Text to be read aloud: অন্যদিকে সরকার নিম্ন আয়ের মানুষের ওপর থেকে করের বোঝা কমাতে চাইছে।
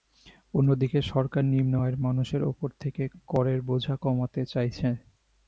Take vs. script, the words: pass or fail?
pass